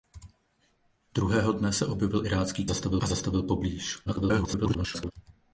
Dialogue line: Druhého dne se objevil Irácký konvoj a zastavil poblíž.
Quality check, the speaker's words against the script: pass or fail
fail